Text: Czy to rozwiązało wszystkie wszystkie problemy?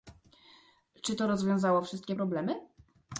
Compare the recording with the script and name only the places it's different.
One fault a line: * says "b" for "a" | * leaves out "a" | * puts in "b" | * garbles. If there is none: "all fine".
* leaves out "wszystkie"